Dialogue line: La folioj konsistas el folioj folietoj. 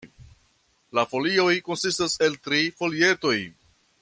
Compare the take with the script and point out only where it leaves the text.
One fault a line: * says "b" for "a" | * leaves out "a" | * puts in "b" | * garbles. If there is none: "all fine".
* says "tri" for "folioj"